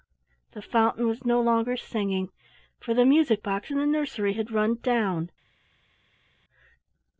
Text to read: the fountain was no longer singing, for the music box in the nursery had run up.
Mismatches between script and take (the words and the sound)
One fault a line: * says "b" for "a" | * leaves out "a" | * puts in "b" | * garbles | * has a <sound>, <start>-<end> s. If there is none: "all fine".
* says "down" for "up"